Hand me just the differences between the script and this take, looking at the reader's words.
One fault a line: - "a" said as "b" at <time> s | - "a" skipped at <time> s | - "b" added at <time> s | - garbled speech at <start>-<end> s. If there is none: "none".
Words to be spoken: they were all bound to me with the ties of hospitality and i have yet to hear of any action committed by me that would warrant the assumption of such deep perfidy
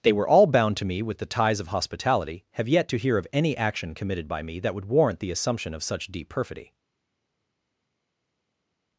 - "and i" skipped at 2.4 s